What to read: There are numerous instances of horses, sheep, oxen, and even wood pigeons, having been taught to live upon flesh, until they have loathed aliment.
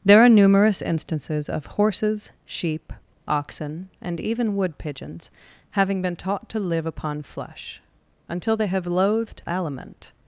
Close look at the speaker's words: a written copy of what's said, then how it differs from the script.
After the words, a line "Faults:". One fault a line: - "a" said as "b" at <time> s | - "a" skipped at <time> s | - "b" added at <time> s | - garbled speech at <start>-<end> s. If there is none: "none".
There are numerous instances of horses, sheep, oxen, and even wood pigeons, having been taught to live upon flesh, until they have loathed aliment.
Faults:
none